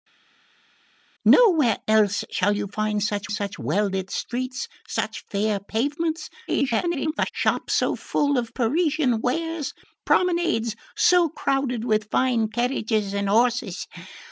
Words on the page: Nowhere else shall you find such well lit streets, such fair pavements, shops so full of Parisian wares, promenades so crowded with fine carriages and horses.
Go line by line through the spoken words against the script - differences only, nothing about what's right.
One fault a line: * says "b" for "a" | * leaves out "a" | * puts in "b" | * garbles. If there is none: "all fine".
* puts in "such"
* garbles